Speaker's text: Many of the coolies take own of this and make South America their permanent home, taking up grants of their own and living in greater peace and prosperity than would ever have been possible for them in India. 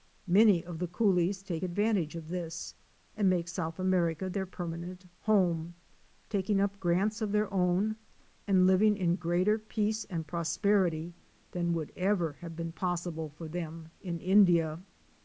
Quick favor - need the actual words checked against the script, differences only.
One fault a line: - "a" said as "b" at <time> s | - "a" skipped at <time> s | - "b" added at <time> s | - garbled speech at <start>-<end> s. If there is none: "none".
- "own" said as "advantage" at 1.6 s